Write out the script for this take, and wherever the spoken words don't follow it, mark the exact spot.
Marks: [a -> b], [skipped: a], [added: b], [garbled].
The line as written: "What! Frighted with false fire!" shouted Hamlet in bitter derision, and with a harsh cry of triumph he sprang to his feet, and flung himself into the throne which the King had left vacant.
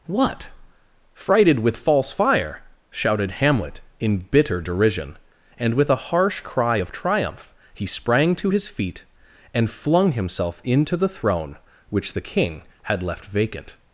"What! Frighted with false fire!" shouted Hamlet in bitter derision, and with a harsh cry of triumph he sprang to his feet, and flung himself into the throne which the King had left vacant.